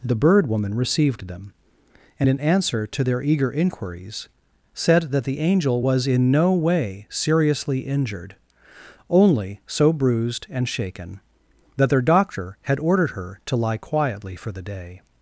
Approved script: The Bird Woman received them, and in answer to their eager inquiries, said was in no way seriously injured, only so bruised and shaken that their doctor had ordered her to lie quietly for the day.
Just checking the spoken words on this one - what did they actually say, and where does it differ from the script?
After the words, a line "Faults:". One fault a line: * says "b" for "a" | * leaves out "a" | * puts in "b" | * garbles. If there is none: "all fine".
The Bird Woman received them, and in answer to their eager inquiries, said that the Angel was in no way seriously injured, only so bruised and shaken that their doctor had ordered her to lie quietly for the day.
Faults:
* puts in "that the Angel"